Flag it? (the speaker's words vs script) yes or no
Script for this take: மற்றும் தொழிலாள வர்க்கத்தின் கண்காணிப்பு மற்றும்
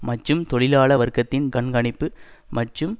no